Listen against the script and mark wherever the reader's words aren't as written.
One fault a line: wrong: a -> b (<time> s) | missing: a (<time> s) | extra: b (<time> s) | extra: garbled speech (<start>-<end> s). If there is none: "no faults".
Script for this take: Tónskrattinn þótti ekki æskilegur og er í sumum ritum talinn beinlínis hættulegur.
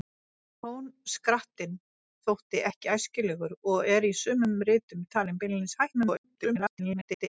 extra: garbled speech (5.9-7.3 s)